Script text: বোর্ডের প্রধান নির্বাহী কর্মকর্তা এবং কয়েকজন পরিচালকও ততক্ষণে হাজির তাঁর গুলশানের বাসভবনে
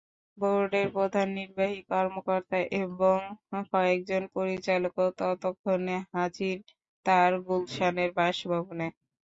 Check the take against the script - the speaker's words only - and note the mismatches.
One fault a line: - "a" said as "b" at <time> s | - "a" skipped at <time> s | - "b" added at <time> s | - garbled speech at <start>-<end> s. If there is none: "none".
none